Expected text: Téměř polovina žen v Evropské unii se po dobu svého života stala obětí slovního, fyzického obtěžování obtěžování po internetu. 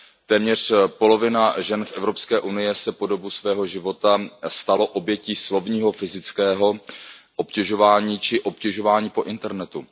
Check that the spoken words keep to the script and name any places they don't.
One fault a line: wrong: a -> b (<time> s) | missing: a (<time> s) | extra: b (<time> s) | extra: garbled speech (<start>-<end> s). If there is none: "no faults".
extra: či (8.2 s)